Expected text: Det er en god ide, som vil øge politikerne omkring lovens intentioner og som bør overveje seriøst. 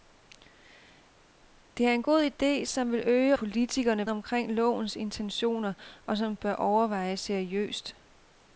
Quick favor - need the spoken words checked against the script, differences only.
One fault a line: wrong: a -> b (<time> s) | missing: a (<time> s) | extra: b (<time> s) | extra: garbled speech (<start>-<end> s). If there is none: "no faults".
no faults